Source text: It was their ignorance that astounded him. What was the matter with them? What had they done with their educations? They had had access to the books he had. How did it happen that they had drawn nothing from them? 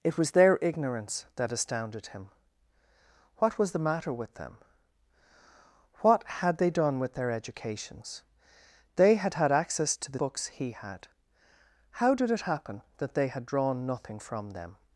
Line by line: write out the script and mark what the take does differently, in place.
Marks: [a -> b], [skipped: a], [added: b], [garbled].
It was their ignorance that astounded him. What was the matter with them? What had they done with their educations? They had had access to the books he had. How did it happen that they had drawn nothing from them?